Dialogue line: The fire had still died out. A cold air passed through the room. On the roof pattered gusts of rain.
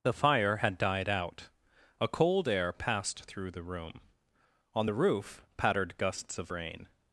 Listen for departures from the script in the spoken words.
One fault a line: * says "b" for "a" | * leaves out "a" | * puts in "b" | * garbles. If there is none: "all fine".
* leaves out "still"